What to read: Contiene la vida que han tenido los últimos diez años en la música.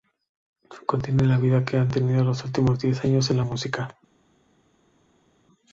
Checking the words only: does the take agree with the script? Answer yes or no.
yes